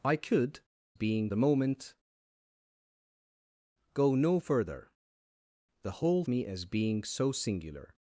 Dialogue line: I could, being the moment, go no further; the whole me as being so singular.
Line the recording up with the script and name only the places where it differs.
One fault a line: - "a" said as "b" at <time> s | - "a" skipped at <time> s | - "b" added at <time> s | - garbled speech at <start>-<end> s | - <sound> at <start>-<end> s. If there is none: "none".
none